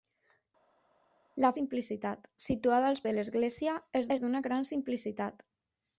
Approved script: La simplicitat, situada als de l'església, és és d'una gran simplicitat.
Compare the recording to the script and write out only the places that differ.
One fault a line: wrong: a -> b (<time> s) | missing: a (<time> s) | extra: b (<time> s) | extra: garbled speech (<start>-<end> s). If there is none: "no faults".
no faults